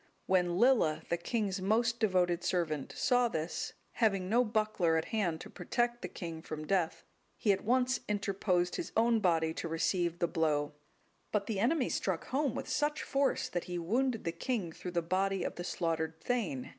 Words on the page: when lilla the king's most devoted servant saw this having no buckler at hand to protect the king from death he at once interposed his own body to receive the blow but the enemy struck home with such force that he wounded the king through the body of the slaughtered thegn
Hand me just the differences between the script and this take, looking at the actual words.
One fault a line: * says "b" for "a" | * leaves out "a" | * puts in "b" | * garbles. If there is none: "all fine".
all fine